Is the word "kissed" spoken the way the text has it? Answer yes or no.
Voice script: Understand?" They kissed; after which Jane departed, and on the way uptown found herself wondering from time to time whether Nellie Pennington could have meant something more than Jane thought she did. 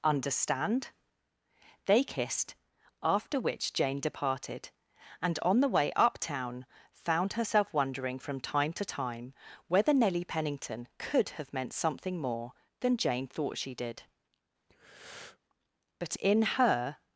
yes